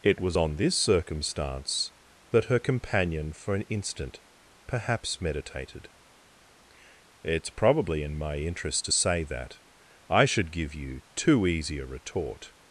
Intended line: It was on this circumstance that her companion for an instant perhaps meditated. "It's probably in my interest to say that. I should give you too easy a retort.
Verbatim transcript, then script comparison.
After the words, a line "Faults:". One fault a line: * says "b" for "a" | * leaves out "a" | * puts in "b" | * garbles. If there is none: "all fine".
It was on this circumstance that her companion for an instant perhaps meditated. "It's probably in my interest to say that. I should give you too easy a retort.
Faults:
all fine